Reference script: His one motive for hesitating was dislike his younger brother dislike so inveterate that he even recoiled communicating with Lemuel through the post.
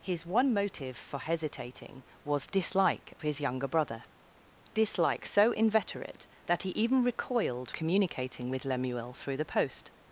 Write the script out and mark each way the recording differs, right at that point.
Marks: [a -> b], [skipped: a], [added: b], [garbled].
His one motive for hesitating was dislike his younger brother dislike so inveterate that he even recoiled communicating with Lemuel through the post.